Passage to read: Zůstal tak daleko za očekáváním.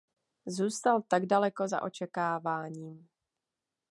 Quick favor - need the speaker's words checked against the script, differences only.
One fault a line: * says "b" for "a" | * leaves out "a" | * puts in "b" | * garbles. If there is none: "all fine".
all fine